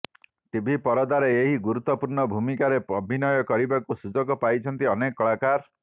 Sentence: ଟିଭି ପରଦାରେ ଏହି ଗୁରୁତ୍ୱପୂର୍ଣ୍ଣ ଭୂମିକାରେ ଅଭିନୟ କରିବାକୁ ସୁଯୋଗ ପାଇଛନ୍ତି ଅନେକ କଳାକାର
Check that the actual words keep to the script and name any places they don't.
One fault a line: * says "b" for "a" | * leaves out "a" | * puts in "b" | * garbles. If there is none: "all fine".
all fine